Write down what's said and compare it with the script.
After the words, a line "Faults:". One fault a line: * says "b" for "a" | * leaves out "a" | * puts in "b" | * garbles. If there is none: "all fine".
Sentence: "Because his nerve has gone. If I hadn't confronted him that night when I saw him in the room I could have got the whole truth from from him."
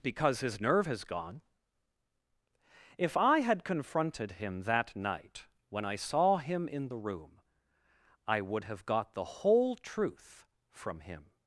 "Because his nerve has gone. If I had confronted him that night when I saw him in the room I would have got the whole truth from him."
Faults:
* says "had" for "hadn't"
* says "would" for "could"
* leaves out "from"